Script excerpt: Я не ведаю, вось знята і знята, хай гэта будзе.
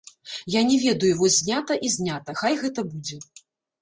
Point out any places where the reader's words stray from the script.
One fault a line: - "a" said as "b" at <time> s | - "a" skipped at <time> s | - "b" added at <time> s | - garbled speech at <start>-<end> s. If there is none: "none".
none